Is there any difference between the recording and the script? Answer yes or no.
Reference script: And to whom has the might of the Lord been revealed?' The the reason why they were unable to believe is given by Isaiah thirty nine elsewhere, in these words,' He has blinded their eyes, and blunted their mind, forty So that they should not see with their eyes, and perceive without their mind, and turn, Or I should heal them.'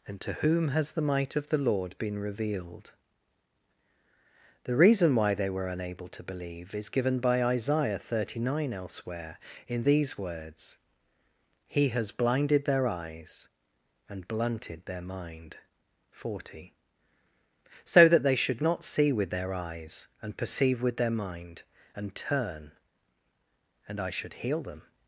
yes